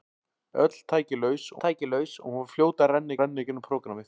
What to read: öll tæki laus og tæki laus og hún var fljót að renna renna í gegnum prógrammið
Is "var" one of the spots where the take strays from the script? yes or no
no